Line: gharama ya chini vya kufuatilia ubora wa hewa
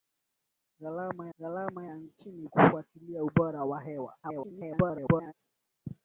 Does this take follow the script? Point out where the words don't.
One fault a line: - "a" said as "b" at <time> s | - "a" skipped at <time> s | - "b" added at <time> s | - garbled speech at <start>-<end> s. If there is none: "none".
- "gharama" added at 1.4 s
- "vya" skipped at 2.5 s
- garbled speech at 4.2-5.3 s